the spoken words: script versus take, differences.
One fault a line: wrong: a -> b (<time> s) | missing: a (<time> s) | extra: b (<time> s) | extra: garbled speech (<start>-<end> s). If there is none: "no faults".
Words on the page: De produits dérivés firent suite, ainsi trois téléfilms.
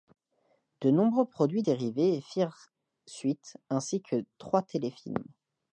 extra: nombreux (0.9 s)
extra: que (4.0 s)